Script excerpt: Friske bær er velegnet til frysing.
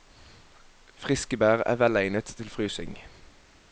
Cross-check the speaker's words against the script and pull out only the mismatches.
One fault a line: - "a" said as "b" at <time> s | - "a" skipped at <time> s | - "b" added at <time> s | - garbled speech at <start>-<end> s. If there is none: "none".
none